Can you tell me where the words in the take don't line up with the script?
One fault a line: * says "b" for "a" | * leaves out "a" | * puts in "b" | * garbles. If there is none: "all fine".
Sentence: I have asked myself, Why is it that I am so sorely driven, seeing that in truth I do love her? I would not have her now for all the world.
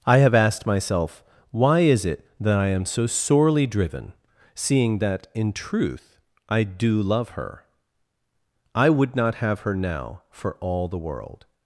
all fine